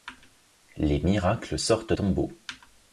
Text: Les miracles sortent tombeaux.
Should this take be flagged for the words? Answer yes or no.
no